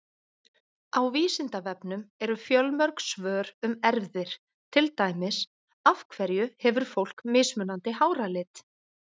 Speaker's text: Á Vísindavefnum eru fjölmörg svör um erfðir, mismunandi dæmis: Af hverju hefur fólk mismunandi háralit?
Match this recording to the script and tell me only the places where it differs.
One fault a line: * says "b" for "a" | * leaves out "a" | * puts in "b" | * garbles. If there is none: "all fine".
* says "til" for "mismunandi"